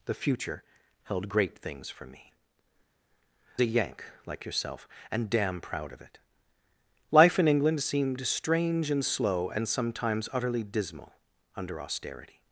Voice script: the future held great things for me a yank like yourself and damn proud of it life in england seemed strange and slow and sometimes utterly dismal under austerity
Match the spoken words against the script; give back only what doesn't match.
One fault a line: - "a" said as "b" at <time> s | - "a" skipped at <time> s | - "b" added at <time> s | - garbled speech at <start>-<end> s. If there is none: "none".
none